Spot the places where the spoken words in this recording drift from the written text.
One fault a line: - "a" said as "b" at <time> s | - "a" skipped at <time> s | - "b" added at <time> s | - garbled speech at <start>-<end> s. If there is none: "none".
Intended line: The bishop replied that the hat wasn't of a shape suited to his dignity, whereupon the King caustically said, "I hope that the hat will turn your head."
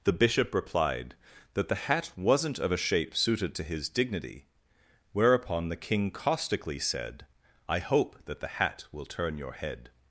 none